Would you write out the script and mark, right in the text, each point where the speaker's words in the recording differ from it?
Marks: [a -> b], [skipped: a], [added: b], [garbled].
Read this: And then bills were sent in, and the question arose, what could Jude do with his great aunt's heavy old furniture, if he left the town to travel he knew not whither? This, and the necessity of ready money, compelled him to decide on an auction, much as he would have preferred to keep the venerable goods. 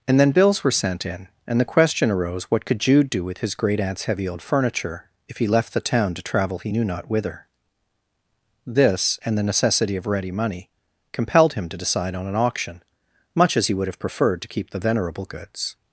And then bills were sent in, and the question arose, what could Jude do with his great aunt's heavy old furniture, if he left the town to travel he knew not whither? This, and the necessity of ready money, compelled him to decide on an auction, much as he would have preferred to keep the venerable goods.